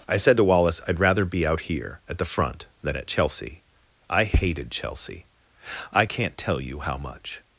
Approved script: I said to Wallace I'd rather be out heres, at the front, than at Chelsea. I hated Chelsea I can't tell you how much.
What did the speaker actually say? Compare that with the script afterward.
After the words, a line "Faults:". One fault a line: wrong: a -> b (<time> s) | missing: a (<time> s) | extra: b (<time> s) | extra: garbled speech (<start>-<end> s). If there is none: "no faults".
I said to Wallace I'd rather be out here, at the front, than at Chelsea. I hated Chelsea I can't tell you how much.
Faults:
wrong: heres -> here (1.6 s)